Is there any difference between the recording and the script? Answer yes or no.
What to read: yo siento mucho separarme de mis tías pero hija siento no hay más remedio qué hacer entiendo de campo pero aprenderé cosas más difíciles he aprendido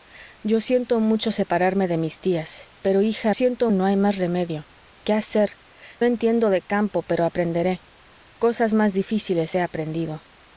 no